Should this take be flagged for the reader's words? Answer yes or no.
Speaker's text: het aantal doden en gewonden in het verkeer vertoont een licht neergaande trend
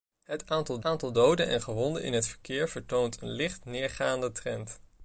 yes